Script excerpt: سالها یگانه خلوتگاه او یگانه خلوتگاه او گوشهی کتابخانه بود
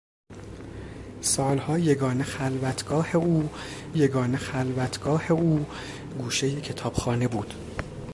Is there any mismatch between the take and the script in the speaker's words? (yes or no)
no